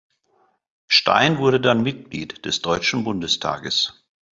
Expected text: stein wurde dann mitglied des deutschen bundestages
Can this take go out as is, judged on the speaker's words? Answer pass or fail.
pass